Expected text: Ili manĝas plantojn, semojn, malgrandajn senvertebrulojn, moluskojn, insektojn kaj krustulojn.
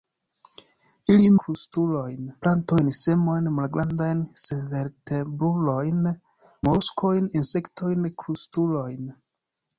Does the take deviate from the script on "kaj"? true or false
true